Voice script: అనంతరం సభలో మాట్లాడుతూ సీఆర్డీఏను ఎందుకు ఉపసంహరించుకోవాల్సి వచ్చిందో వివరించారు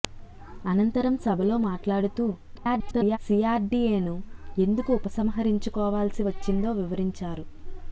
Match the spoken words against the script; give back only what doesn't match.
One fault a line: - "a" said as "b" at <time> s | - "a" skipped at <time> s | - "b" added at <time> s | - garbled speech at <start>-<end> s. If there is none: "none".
- garbled speech at 2.5-3.2 s